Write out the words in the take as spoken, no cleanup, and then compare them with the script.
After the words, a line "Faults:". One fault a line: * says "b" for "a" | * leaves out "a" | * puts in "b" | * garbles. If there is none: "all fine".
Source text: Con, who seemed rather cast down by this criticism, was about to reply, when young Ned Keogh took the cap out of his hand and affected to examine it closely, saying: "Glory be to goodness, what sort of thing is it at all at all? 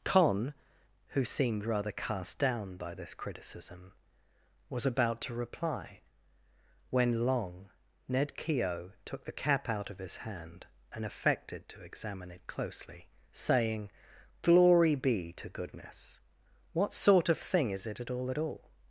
Con, who seemed rather cast down by this criticism, was about to reply, when long Ned Keogh took the cap out of his hand and affected to examine it closely, saying: "Glory be to goodness, what sort of thing is it at all at all?
Faults:
* says "long" for "young"